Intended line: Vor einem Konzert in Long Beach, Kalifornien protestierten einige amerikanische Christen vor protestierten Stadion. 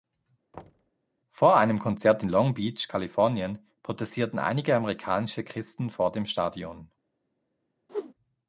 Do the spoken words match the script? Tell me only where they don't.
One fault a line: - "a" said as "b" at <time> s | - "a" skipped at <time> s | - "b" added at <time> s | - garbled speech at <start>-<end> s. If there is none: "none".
- "protestierten" said as "dem" at 6.1 s